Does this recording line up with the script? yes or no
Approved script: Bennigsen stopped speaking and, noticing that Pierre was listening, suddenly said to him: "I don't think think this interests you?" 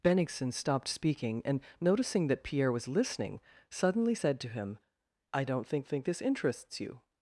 yes